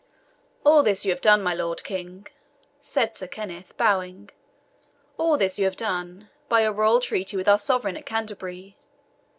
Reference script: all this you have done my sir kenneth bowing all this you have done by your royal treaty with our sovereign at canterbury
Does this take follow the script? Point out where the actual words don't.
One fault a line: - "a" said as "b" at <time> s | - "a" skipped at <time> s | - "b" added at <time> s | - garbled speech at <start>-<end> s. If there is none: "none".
- "lord king said" added at 1.5 s